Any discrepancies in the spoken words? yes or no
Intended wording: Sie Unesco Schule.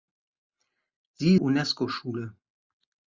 no